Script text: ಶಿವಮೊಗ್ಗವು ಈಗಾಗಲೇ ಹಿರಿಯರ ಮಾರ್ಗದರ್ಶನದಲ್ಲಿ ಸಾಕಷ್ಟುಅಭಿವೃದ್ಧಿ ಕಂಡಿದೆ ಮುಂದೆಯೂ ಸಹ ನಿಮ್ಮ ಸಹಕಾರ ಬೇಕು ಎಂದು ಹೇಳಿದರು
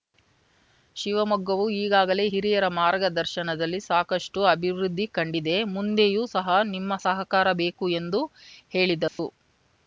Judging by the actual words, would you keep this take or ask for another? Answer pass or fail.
pass